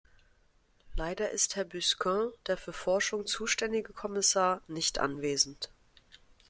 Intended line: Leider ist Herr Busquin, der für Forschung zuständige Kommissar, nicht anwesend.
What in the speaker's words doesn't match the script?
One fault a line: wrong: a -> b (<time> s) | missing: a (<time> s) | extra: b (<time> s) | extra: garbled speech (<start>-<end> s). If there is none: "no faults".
no faults